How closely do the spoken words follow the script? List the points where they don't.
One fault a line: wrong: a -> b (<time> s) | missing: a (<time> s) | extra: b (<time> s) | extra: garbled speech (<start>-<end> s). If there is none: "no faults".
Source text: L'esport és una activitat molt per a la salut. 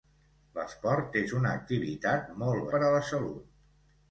no faults